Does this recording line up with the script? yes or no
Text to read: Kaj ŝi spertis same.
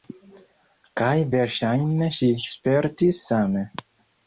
no